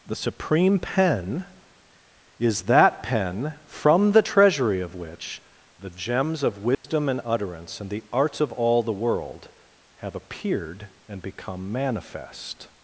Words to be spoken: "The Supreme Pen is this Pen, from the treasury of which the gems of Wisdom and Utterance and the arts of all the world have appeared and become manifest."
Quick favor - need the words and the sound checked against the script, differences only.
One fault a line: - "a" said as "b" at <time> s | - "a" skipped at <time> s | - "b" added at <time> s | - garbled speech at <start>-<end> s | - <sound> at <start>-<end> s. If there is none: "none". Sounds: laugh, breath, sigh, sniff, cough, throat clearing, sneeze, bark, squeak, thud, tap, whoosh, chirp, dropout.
- "this" said as "that" at 2.6 s
- dropout at 6.7-6.8 s